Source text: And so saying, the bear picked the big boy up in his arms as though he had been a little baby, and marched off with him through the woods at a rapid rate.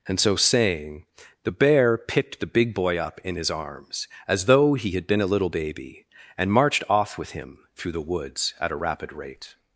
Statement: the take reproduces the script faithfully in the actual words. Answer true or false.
true